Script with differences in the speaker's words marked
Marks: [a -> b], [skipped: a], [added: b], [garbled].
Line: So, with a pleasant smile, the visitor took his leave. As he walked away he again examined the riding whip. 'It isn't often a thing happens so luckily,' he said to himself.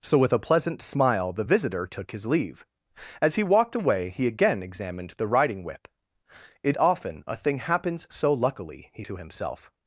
So, with a pleasant smile, the visitor took his leave. As he walked away he again examined the riding whip. 'It [skipped: isn't] often a thing happens so luckily,' he [skipped: said] to himself.